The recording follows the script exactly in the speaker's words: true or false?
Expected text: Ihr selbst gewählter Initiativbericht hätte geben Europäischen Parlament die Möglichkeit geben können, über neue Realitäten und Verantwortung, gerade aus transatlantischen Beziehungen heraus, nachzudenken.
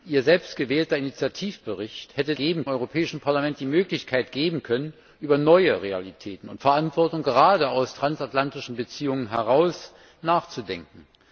true